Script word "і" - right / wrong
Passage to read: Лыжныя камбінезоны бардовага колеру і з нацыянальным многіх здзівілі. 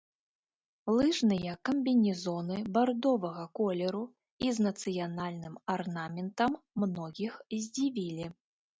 right